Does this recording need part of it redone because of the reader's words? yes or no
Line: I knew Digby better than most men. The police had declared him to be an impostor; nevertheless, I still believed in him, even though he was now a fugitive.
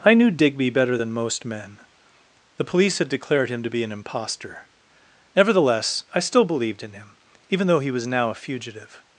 no